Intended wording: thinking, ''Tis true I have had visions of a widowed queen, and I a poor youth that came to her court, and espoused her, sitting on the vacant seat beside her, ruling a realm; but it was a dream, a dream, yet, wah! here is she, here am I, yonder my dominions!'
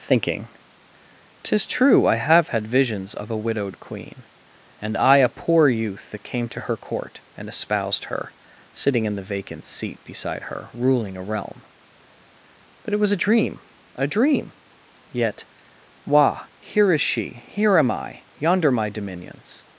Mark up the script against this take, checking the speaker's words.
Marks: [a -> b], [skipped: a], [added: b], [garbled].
thinking, ''Tis true I have had visions of a widowed queen, and I a poor youth that came to her court, and espoused her, sitting [on -> in] the vacant seat beside her, ruling a realm; but it was a dream, a dream, yet, wah! here is she, here am I, yonder my dominions!'